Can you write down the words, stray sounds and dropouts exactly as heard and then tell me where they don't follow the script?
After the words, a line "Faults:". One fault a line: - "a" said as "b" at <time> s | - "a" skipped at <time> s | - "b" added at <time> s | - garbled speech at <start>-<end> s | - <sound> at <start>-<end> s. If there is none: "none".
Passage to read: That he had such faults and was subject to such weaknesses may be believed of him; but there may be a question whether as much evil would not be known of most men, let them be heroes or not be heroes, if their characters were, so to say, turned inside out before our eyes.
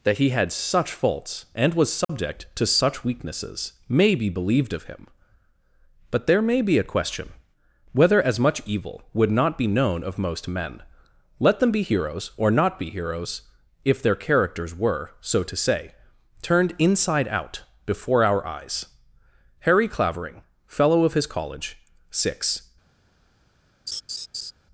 That he had such faults and was subject to such weaknesses may be believed of him; but there may be a question whether as much evil would not be known of most men, let them be heroes or not be heroes, if their characters were, so to say, turned inside out before our eyes. Harry Clavering, fellow of his college, six
Faults:
- dropout at 2.0-2.1 s
- "Harry Clavering fellow of his college six" added at 19.6 s
- laugh at 23.9-24.5 s